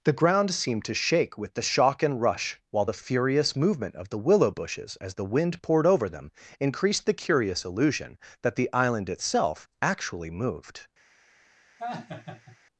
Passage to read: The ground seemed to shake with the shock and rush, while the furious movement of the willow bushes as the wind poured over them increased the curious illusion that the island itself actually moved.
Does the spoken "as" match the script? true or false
true